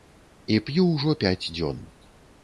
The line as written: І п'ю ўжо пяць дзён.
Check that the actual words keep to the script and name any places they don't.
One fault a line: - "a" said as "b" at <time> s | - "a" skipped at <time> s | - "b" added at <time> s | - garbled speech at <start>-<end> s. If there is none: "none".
none